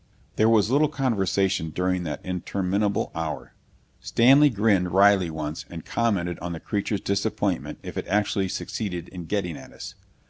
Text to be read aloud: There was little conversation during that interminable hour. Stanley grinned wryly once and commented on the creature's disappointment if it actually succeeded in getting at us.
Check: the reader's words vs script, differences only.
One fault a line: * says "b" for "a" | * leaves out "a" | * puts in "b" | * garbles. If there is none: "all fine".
all fine